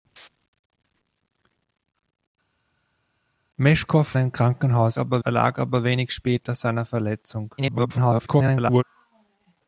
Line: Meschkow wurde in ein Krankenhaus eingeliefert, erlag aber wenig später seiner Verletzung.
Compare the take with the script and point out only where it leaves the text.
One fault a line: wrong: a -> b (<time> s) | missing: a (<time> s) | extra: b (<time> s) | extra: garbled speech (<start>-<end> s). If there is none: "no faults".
missing: wurde in (4.2 s)
wrong: eingeliefert -> aber (5.0 s)
extra: garbled speech (7.6-8.8 s)